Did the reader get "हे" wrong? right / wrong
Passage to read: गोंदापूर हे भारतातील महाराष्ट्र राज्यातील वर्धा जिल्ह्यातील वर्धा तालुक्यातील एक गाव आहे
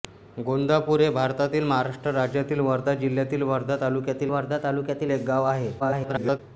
right